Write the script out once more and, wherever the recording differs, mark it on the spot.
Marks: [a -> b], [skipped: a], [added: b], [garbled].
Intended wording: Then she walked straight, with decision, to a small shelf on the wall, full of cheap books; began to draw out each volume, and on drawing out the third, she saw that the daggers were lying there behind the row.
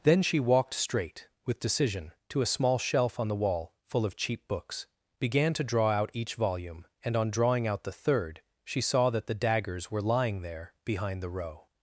Then she walked straight, with decision, to a small shelf on the wall, full of cheap books; began to draw out each volume, and on drawing out the third, she saw that the daggers were lying there behind the row.